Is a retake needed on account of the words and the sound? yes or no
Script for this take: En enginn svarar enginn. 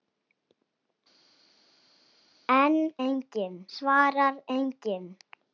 no